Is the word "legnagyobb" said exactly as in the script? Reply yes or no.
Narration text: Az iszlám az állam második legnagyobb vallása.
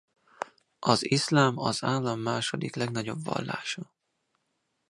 yes